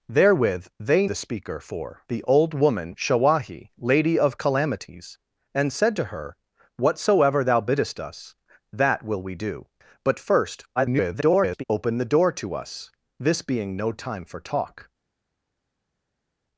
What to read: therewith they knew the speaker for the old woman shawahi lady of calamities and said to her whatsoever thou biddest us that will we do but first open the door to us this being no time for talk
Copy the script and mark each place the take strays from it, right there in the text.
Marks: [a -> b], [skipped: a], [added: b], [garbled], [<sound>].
therewith they [skipped: knew] the speaker for the old woman shawahi lady of calamities and said to her whatsoever thou biddest us that will we do but first [garbled] open the door to us this being no time for talk